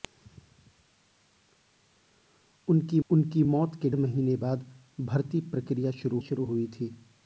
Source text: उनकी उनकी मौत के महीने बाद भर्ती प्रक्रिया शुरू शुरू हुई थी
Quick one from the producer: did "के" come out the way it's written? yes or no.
yes